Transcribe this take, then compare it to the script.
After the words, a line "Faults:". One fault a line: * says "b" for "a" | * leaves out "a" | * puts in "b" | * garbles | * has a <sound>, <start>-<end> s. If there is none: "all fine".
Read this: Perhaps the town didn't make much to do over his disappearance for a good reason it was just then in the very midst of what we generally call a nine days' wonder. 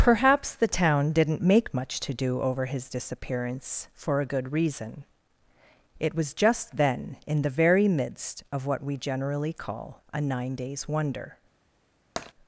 Perhaps the town didn't make much to do over his disappearance for a good reason it was just then in the very midst of what we generally call a nine days' wonder.
Faults:
* has a tap, 12.2-12.3 s